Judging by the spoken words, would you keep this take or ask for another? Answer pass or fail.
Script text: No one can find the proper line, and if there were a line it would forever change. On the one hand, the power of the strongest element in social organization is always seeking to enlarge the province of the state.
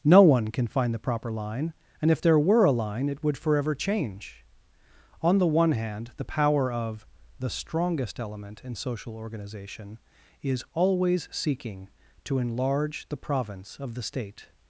pass